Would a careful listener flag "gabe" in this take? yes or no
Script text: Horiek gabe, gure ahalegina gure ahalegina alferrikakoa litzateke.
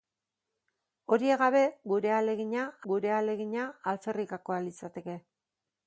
no